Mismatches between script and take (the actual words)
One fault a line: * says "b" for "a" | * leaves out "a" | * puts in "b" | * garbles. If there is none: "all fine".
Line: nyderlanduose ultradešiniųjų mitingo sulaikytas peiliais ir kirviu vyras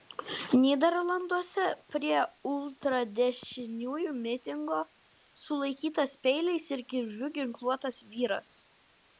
* puts in "prie"
* puts in "ginkluotas"